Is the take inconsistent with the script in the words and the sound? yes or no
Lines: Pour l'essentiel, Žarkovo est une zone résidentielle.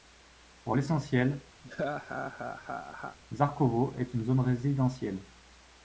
yes